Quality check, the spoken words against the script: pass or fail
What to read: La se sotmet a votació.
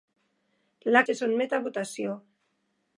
pass